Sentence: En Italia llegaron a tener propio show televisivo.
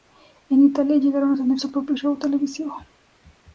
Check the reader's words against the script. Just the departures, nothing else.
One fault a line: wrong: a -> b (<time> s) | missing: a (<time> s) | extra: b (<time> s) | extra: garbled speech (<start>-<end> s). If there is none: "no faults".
extra: su (1.6 s)